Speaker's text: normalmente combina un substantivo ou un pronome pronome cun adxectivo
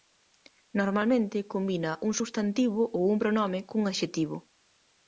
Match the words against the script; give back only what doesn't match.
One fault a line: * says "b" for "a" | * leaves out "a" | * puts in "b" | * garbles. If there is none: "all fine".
* leaves out "pronome"